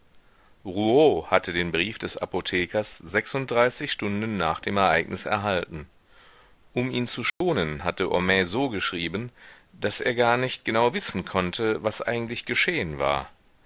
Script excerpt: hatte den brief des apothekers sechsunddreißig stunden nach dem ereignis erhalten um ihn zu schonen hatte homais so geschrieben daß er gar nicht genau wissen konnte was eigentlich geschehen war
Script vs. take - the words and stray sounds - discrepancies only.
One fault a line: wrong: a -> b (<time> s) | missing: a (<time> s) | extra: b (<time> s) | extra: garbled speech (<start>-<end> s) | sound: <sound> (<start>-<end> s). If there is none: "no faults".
sound: dropout (7.3-7.4 s)